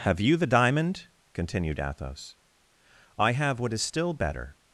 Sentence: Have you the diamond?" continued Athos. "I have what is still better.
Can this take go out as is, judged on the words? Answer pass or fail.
pass